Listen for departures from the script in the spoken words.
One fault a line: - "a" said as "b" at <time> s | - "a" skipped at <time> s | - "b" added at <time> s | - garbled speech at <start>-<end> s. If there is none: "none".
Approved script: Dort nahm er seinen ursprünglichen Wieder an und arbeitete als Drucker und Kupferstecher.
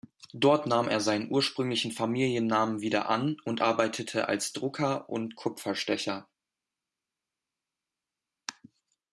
- "Familiennamen" added at 1.9 s